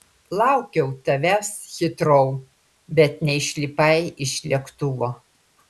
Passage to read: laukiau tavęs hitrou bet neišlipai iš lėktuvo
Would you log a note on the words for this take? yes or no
no